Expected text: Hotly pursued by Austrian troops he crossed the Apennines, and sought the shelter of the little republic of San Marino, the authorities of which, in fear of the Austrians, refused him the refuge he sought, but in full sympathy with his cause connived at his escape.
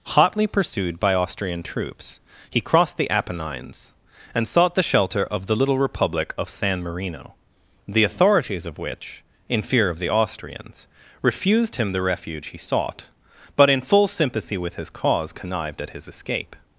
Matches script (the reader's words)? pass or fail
pass